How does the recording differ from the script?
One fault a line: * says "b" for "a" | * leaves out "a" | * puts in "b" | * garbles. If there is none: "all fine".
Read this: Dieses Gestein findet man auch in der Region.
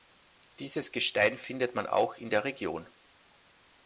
all fine